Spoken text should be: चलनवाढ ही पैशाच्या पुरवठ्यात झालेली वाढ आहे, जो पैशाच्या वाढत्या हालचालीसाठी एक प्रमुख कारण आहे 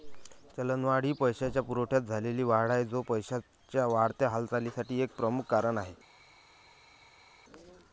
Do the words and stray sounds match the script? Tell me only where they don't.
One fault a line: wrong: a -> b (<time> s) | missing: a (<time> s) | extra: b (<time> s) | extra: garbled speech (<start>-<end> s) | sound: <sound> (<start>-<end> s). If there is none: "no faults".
no faults